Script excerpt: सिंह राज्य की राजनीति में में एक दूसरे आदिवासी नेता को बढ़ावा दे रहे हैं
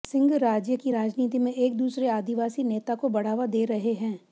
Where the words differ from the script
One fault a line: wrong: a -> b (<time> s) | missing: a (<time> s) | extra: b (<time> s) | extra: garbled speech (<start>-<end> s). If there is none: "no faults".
missing: में (1.5 s)